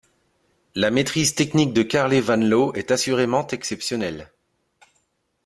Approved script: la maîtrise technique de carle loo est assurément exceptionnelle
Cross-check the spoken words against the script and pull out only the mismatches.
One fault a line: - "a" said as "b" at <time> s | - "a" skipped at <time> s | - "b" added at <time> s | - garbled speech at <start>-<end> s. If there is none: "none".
- "van" added at 2.2 s